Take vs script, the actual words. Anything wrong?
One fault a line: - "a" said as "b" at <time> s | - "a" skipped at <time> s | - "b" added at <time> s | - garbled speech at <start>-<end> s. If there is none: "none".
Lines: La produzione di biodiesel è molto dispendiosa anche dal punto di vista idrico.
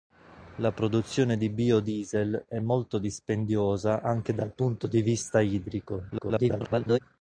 - garbled speech at 6.1-7.0 s